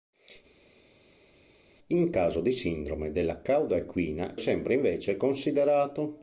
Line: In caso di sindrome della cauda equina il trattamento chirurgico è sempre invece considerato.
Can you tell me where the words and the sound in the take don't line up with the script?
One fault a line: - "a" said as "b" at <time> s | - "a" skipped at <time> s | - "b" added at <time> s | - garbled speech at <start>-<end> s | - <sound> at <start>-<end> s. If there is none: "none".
- "il trattamento chirurgico" skipped at 4.3 s